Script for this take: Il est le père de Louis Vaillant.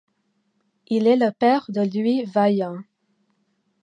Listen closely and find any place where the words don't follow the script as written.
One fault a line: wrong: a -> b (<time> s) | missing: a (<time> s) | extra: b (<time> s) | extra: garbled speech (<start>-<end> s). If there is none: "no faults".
no faults